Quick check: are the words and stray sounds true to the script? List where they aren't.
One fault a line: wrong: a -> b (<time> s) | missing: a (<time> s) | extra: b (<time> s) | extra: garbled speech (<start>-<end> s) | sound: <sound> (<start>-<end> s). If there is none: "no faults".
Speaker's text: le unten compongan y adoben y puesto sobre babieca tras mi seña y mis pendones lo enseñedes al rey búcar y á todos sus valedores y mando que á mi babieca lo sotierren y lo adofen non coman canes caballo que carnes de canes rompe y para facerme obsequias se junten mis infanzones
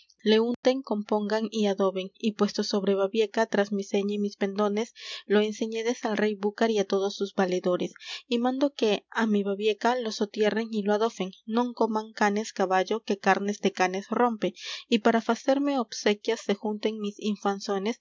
sound: dropout (0.5-0.6 s)